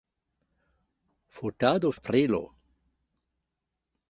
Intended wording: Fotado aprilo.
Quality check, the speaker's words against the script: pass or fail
pass